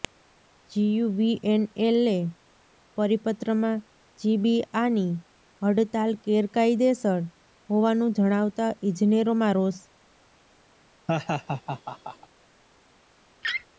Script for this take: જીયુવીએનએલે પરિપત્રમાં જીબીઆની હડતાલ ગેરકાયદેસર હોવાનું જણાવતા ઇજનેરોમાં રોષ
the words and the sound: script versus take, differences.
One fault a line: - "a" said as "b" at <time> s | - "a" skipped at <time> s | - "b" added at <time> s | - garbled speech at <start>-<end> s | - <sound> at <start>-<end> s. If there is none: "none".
- laugh at 11.1-12.3 s
- laugh at 13.4-13.7 s